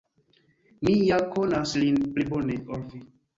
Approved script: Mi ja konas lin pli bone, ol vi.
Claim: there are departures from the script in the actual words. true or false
false